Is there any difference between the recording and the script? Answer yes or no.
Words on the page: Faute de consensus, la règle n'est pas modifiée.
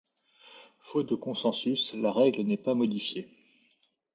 no